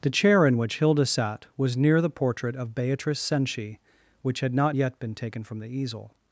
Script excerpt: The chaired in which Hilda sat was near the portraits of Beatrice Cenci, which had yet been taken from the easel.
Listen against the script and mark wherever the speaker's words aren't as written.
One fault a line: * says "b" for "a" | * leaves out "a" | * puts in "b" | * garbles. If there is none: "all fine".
* says "chair" for "chaired"
* says "portrait" for "portraits"
* puts in "not"